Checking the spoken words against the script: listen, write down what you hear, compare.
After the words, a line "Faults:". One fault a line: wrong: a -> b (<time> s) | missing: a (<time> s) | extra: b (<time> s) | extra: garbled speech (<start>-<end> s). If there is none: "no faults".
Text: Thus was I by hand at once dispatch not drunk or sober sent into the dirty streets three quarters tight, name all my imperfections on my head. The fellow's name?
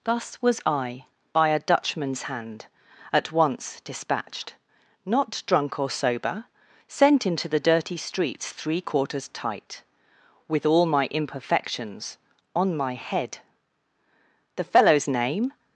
Thus was I by a Dutchman's hand at once dispatched not drunk or sober sent into the dirty streets three quarters tight, with all my imperfections on my head. The fellow's name?
Faults:
extra: a Dutchman's (1.5 s)
wrong: dispatch -> dispatched (3.8 s)
wrong: name -> with (10.5 s)